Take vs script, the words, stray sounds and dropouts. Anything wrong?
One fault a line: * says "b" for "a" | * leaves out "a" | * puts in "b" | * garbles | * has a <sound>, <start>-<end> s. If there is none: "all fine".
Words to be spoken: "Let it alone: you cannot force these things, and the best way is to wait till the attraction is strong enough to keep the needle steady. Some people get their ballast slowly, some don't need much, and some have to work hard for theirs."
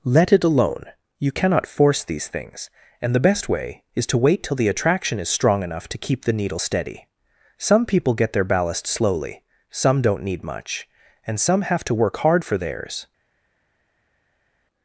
all fine